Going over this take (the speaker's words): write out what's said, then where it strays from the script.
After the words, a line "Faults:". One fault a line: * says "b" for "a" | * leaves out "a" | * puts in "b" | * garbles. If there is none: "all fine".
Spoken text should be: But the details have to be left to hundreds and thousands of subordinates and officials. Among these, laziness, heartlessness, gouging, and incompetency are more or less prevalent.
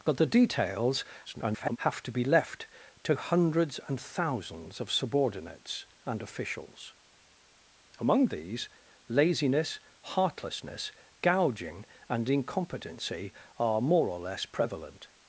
But the details [garbled] have to be left to hundreds and thousands of subordinates and officials. Among these, laziness, heartlessness, gouging, and incompetency are more or less prevalent.
Faults:
* garbles